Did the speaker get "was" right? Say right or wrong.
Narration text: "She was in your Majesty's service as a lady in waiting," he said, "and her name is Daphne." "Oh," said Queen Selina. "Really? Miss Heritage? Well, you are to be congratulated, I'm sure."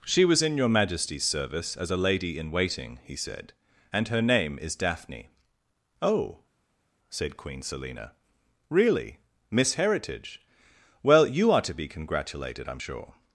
right